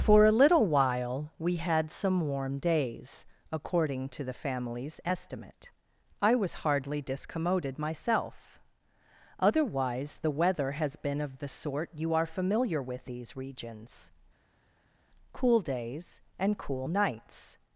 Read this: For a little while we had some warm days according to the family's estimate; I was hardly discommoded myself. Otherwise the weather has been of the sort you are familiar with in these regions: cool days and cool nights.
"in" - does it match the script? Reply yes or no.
no